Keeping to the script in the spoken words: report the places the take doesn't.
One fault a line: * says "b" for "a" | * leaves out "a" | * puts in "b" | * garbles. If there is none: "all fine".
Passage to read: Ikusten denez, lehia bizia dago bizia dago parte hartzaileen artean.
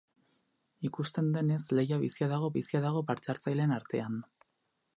all fine